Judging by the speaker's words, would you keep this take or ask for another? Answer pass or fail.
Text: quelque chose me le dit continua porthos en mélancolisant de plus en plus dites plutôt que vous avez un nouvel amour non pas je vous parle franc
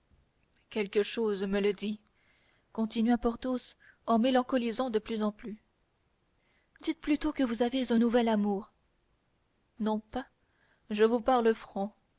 pass